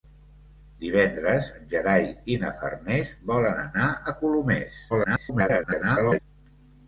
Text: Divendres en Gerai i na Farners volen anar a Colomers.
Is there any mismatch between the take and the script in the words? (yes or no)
yes